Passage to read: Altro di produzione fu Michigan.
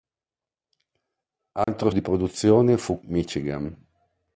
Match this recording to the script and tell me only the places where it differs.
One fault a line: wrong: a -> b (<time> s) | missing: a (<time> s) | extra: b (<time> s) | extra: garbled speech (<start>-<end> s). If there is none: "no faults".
no faults